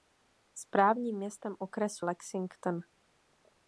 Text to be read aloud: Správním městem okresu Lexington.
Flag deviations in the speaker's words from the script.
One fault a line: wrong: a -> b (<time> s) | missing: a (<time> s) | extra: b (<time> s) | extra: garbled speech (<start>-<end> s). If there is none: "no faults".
no faults